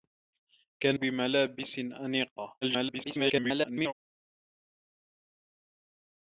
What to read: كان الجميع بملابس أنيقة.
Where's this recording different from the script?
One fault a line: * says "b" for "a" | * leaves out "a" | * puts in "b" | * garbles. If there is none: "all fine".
* leaves out "الجميع"
* garbles